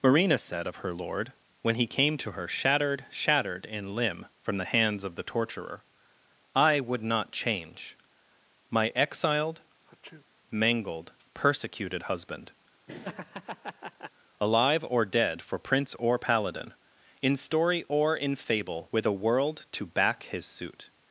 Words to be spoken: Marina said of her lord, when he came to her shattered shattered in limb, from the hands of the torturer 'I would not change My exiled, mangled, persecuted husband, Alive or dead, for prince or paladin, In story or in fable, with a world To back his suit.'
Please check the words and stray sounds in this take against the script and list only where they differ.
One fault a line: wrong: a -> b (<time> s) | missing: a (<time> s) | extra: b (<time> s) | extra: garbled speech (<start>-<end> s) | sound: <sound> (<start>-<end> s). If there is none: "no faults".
sound: sneeze (9.9-10.3 s)
sound: laugh (12.9-14.1 s)